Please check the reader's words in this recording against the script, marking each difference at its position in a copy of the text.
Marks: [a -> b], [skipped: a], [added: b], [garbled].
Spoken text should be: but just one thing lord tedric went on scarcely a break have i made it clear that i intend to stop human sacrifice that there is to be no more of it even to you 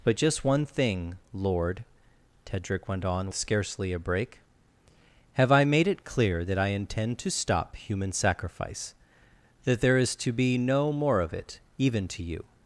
but just one thing lord tedric went on scarcely a break have i made it clear that i intend to stop human sacrifice that there is to be no more of it even to you